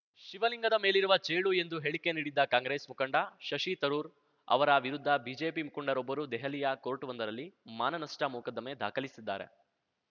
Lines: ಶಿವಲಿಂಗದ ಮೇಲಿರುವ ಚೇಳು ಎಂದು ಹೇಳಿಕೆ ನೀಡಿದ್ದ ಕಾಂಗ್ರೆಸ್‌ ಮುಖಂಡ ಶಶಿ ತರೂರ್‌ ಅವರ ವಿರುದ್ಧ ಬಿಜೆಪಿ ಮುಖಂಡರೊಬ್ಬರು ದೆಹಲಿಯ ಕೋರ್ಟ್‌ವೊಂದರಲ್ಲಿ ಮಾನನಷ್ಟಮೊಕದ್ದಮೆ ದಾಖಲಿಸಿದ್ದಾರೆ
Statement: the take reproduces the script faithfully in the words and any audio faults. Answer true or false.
true